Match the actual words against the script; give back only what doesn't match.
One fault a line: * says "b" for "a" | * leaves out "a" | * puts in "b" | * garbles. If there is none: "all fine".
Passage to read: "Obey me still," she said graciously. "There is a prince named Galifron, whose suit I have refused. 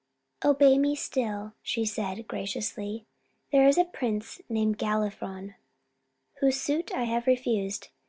all fine